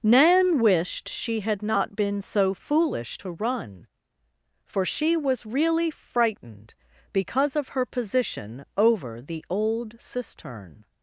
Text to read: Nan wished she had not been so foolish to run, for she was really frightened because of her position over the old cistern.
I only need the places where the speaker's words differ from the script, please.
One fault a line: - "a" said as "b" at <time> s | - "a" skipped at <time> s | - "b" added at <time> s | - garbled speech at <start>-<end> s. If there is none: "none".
none